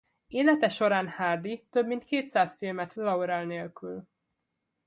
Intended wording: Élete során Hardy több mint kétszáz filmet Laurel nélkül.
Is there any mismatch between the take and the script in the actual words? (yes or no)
no